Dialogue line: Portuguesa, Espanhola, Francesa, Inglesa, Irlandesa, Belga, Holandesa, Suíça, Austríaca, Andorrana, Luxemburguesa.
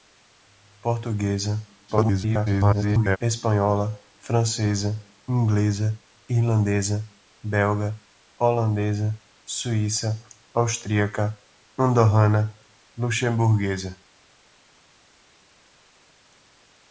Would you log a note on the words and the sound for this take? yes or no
yes